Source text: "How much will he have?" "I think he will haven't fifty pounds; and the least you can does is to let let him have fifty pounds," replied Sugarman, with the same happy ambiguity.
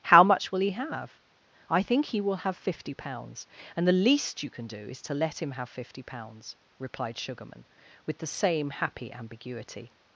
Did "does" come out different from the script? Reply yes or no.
yes